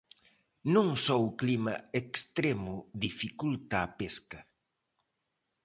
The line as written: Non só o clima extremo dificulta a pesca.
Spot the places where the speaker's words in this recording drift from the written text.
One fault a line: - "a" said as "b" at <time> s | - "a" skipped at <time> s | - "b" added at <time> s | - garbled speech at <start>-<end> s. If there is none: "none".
none